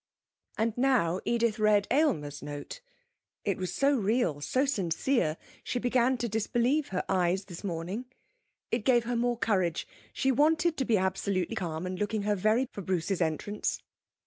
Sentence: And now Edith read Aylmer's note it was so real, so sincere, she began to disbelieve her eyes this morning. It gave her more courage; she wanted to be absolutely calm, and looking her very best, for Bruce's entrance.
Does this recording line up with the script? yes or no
no